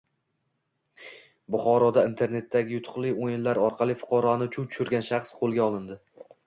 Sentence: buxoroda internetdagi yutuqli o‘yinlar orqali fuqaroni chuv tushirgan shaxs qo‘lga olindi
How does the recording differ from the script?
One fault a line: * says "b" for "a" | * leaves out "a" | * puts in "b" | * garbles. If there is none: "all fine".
all fine